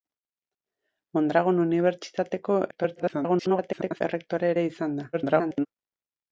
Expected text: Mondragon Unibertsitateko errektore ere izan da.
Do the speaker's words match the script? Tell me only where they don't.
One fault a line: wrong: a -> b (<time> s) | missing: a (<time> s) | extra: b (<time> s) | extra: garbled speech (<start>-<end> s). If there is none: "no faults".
extra: garbled speech (2.7-4.0 s)
extra: garbled speech (5.1-5.7 s)